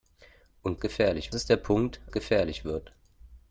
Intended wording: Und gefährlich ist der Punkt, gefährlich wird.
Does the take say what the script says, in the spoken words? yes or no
yes